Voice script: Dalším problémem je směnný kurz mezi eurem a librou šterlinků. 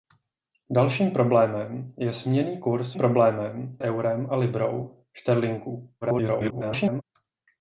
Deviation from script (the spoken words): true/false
true